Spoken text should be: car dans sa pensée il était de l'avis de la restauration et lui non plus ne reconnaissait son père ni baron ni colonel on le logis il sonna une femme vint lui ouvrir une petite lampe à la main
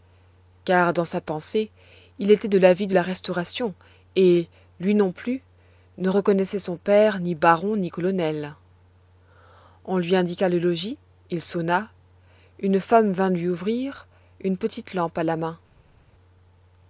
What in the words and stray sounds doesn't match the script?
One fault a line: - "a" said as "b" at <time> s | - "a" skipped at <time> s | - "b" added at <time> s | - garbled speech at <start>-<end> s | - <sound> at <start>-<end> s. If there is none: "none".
- "lui indiqua" added at 10.0 s